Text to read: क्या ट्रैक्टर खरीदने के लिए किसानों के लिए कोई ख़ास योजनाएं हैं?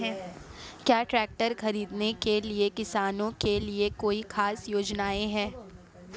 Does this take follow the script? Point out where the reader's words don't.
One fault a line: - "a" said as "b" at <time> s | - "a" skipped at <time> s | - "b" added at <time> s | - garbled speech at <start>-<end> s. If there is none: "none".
none